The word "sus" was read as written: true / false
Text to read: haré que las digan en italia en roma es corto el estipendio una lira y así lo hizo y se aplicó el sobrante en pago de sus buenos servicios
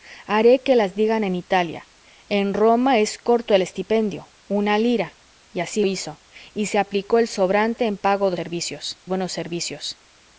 false